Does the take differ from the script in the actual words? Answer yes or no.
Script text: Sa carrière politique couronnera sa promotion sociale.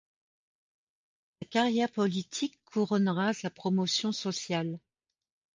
no